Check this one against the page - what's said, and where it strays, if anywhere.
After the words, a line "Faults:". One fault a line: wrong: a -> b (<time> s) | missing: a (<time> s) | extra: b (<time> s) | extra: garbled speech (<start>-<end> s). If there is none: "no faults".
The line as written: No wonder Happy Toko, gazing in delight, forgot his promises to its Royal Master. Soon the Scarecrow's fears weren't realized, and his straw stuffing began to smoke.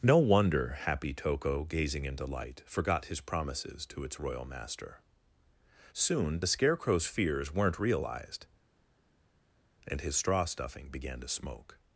No wonder Happy Toko, gazing in delight, forgot his promises to its Royal Master. Soon the Scarecrow's fears weren't realized, and his straw stuffing began to smoke.
Faults:
no faults